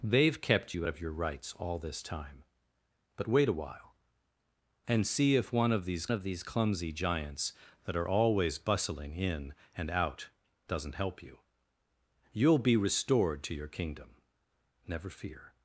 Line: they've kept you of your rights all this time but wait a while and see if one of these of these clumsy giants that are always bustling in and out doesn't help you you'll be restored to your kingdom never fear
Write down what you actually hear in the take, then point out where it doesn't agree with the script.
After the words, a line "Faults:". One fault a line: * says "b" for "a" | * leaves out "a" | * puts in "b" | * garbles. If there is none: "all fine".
they've kept you of your rights all this time but wait a while and see if one of these of these clumsy giants that are always bustling in and out doesn't help you you'll be restored to your kingdom never fear
Faults:
all fine